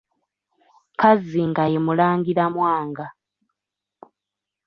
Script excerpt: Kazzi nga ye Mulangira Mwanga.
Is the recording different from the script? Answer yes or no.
no